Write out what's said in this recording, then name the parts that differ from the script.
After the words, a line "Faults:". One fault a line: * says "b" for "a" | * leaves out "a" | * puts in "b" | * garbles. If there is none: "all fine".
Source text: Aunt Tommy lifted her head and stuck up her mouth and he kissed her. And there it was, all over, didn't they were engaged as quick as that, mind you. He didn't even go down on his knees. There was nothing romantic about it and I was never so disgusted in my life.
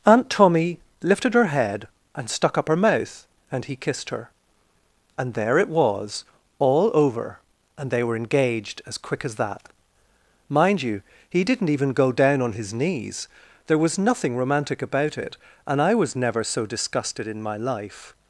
Aunt Tommy lifted her head and stuck up her mouth and he kissed her. And there it was, all over, and they were engaged as quick as that, mind you. He didn't even go down on his knees. There was nothing romantic about it and I was never so disgusted in my life.
Faults:
* says "and" for "didn't"